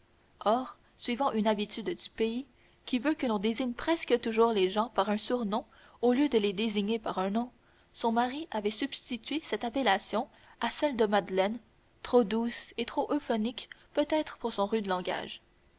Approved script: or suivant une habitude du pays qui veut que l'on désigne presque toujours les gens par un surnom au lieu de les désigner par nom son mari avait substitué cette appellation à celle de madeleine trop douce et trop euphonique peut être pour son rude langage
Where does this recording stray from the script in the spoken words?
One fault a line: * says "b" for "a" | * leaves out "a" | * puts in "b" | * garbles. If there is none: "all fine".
* puts in "un"